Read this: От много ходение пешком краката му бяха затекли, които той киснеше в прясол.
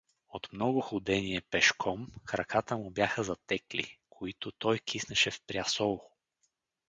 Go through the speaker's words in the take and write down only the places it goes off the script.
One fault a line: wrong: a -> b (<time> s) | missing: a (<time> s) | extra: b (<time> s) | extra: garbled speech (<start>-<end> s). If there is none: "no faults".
no faults